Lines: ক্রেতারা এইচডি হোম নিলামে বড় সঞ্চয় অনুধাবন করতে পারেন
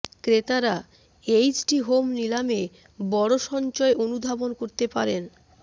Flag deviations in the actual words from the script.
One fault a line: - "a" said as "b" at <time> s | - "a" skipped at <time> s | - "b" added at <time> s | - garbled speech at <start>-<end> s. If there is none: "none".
none